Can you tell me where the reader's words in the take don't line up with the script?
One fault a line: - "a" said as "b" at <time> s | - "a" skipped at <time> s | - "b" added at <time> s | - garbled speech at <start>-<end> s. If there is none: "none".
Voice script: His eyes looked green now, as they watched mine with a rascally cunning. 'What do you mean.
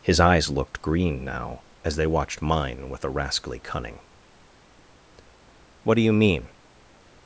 none